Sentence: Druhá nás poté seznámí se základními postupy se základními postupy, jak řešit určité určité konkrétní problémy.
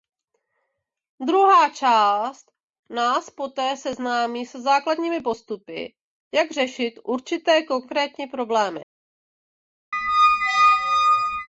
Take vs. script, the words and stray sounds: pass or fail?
fail